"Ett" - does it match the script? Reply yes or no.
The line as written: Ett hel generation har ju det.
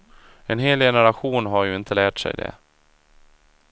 no